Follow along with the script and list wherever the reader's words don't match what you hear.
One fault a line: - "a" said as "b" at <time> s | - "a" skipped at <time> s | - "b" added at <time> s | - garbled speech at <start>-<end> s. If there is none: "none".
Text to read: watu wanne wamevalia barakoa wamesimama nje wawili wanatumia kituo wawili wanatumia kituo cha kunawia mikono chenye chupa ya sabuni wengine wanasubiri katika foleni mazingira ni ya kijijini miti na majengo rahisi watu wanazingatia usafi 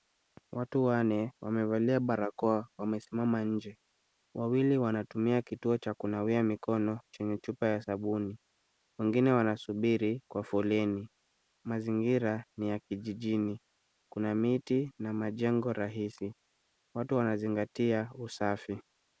- "wawili wanatumia kituo" skipped at 5.8 s
- "katika" said as "kwa" at 10.3 s
- "kuna" added at 14.1 s